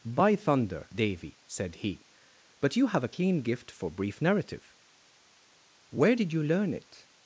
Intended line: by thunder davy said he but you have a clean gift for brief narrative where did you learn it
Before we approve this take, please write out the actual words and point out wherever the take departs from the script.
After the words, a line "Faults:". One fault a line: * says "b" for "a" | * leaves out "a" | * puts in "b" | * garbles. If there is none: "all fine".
by thunder davy said he but you have a clean gift for brief narrative where did you learn it
Faults:
all fine